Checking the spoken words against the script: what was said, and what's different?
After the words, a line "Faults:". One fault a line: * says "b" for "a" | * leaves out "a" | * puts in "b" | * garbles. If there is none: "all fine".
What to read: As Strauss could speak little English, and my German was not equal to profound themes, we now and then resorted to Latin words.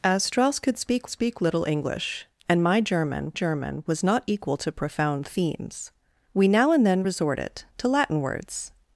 As Strauss could speak speak little English, and my German German was not equal to profound themes, we now and then resorted to Latin words.
Faults:
* puts in "speak"
* puts in "German"